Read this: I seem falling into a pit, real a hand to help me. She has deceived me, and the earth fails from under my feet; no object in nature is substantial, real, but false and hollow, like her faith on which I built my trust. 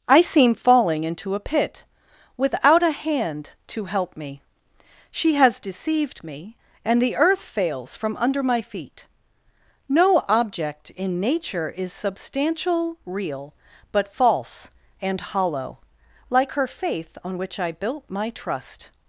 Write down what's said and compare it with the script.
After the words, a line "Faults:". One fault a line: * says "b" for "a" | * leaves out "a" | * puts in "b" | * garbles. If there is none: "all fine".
I seem falling into a pit, without a hand to help me. She has deceived me, and the earth fails from under my feet; no object in nature is substantial, real, but false and hollow, like her faith on which I built my trust.
Faults:
* says "without" for "real"